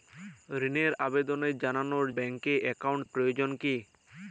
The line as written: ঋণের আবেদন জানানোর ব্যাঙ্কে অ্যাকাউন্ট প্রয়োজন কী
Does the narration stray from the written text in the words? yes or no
no